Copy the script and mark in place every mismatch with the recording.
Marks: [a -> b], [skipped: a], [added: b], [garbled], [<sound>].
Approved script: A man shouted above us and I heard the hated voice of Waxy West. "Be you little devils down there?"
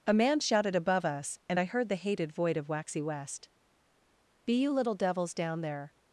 A man shouted above us and I heard the hated [voice -> void] of Waxy West. "Be you little devils down there?"